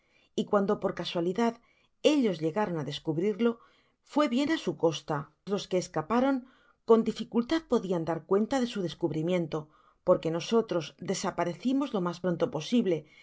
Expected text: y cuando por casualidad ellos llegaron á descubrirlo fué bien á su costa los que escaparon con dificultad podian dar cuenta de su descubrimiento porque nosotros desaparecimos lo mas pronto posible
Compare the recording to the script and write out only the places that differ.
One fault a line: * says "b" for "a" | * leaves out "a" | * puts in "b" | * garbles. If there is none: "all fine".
all fine